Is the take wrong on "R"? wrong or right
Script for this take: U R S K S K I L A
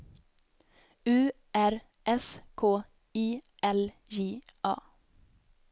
right